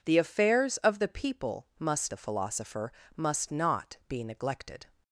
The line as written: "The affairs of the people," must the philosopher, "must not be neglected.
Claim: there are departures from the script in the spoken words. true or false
false